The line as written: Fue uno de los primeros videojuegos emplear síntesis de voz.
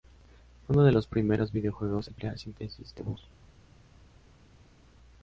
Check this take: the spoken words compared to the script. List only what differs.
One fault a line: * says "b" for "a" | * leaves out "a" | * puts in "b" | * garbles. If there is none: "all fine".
all fine